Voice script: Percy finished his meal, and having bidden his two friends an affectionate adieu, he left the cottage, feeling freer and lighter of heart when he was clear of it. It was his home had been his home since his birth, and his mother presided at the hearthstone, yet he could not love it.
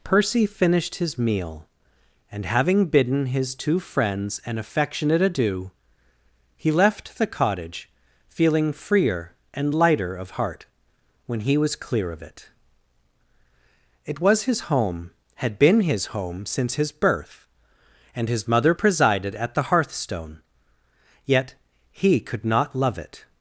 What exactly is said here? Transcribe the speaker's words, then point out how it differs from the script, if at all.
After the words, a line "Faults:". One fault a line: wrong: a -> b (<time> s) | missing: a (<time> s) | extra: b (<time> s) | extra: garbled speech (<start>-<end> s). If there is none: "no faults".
Percy finished his meal, and having bidden his two friends an affectionate adieu, he left the cottage, feeling freer and lighter of heart when he was clear of it. It was his home had been his home since his birth, and his mother presided at the hearthstone, yet he could not love it.
Faults:
no faults